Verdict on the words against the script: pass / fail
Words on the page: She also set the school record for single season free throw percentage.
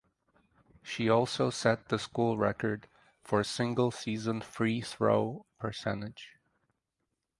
pass